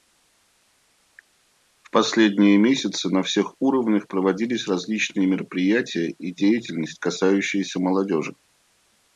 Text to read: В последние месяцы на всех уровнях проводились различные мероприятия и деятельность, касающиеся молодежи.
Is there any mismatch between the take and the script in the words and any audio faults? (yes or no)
no